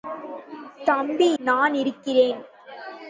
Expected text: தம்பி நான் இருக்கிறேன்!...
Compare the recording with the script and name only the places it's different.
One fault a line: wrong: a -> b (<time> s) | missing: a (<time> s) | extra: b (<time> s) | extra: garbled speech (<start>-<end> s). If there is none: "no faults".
no faults